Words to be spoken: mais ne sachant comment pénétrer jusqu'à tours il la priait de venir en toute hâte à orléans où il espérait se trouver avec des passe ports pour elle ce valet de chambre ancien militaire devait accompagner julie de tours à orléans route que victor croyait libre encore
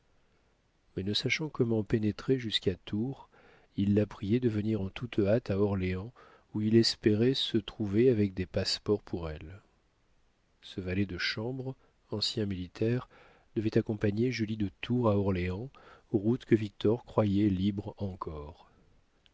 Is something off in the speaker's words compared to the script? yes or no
no